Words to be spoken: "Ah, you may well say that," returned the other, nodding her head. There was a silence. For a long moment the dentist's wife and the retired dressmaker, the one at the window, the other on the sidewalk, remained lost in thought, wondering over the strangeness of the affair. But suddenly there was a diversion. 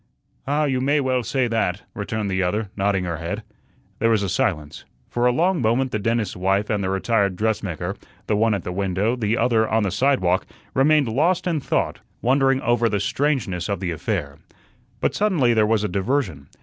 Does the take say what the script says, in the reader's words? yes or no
yes